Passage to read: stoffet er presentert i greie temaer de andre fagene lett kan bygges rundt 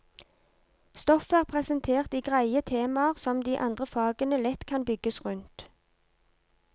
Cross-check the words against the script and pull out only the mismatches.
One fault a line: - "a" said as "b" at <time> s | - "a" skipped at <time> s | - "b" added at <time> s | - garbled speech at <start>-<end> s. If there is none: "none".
- "som" added at 3.2 s